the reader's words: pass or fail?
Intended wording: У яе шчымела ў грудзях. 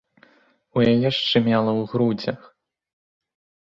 pass